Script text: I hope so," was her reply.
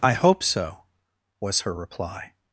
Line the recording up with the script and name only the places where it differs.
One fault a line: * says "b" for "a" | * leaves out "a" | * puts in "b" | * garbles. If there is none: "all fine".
all fine